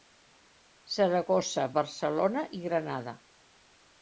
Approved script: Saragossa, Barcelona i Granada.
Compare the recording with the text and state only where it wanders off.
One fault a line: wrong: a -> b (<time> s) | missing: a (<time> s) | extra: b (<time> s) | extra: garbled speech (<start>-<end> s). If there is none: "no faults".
no faults